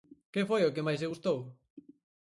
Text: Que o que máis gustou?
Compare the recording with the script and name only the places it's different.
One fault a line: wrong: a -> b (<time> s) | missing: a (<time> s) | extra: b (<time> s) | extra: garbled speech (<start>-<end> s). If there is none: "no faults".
extra: foi (0.5 s)
extra: lle (1.0 s)